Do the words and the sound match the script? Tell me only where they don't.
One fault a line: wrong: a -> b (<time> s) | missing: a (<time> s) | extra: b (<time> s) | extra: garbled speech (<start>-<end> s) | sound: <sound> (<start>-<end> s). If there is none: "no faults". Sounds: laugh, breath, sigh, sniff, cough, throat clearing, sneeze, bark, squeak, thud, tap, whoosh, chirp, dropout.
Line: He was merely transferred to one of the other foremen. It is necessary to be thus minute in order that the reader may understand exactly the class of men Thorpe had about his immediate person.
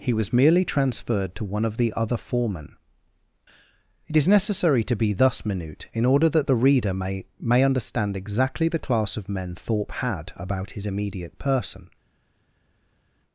extra: may (7.4 s)